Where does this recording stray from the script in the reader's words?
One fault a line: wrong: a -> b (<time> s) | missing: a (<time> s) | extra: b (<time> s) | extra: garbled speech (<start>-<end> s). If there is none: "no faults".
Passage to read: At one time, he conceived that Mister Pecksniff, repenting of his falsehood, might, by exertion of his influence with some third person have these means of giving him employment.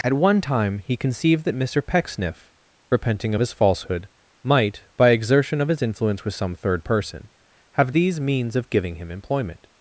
no faults